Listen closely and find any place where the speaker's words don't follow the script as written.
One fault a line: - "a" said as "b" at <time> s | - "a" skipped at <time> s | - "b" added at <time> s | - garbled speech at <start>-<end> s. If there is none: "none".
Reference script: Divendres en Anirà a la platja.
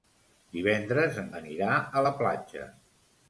none